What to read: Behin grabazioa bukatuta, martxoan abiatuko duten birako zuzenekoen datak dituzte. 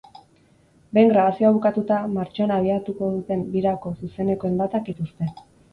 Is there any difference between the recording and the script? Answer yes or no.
no